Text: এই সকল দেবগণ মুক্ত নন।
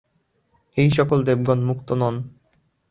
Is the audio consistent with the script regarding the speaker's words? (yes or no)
yes